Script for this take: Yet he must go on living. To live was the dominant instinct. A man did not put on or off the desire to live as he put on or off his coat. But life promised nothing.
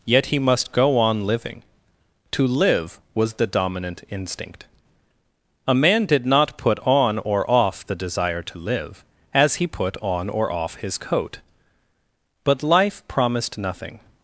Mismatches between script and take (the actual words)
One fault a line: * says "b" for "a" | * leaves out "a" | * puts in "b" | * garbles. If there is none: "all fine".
all fine